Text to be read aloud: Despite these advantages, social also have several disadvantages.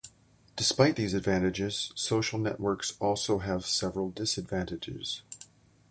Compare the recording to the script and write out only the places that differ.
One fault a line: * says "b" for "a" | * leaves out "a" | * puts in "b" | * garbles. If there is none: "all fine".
* puts in "networks"